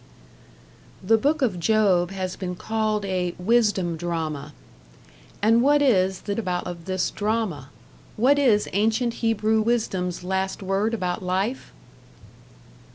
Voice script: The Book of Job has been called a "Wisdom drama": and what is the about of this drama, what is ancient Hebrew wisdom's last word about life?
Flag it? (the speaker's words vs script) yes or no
no